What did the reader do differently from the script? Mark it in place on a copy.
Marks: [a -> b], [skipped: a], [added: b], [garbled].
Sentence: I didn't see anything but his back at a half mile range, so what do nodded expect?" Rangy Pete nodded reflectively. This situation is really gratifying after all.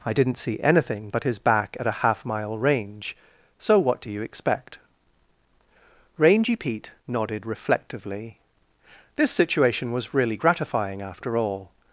I didn't see anything but his back at a half mile range, so what do [nodded -> you] expect?" Rangy Pete nodded reflectively. This situation [is -> was] really gratifying after all.